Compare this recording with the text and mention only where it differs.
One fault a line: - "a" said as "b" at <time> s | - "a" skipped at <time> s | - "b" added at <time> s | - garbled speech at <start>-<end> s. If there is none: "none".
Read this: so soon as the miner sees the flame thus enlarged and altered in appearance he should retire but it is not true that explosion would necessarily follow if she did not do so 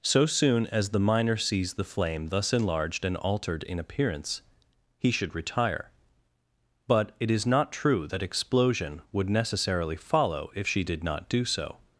none